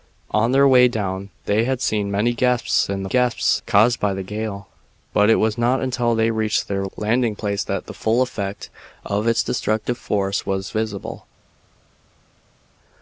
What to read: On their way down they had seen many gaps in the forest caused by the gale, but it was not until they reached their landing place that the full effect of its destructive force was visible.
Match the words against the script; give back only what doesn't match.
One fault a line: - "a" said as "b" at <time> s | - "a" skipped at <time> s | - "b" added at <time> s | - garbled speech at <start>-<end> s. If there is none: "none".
- "forest" said as "gaps" at 3.1 s